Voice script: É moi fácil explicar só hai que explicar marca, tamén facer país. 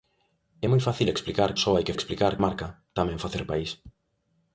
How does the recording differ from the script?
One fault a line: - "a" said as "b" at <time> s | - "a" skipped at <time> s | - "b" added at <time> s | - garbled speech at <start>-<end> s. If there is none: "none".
none